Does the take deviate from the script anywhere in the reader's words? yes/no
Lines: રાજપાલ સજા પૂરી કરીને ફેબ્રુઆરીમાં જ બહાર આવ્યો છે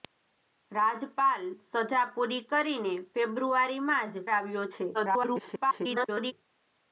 yes